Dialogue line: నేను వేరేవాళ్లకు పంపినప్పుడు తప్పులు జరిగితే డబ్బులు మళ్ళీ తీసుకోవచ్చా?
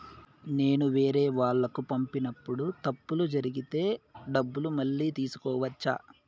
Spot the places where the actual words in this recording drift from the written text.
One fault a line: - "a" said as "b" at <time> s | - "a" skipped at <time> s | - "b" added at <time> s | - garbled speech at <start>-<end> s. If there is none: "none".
none